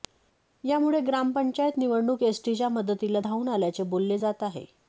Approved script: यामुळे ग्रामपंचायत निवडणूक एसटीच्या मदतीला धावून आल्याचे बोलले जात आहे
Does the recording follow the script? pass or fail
pass